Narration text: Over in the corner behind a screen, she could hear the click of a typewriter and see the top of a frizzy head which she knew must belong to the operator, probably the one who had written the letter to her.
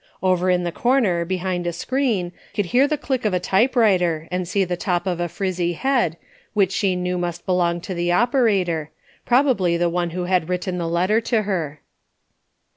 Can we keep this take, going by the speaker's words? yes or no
no